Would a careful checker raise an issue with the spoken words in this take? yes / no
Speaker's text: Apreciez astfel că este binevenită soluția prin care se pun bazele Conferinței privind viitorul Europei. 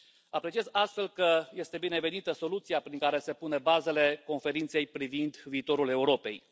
no